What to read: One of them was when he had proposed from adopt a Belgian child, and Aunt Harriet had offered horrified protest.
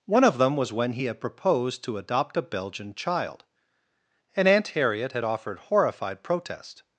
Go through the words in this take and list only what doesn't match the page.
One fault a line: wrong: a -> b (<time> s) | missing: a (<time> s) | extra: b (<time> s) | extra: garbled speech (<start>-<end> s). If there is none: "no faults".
wrong: from -> to (1.8 s)